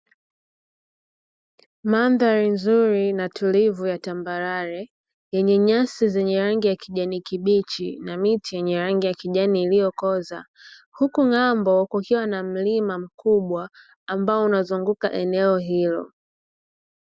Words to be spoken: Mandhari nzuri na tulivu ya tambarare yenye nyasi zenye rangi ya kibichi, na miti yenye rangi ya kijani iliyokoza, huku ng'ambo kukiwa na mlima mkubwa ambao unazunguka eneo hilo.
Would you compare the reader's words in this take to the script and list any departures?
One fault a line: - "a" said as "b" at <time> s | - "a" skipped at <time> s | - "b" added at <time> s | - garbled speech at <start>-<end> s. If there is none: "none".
- "kijani" added at 6.8 s